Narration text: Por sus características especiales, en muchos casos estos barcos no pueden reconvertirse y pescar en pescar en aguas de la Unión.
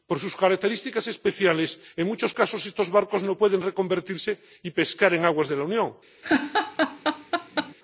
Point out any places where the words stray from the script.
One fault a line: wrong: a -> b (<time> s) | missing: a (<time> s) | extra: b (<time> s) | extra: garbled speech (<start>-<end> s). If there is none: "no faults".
missing: pescar en (5.2 s)